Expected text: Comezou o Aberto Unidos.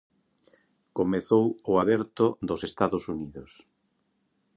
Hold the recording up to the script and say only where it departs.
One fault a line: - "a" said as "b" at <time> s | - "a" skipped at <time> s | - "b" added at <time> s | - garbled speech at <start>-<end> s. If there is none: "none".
- "dos Estados" added at 2.5 s